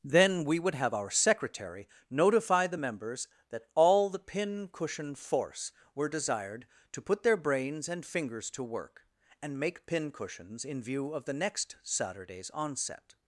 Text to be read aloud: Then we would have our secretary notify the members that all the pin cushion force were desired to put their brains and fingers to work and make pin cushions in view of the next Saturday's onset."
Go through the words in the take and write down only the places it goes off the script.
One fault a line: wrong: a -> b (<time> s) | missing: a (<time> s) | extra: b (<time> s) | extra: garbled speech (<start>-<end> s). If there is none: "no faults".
no faults